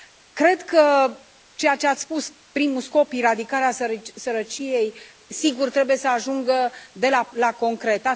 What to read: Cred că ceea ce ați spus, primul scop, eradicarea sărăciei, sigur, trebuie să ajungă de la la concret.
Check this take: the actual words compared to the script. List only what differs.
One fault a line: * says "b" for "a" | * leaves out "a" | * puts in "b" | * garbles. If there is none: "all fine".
all fine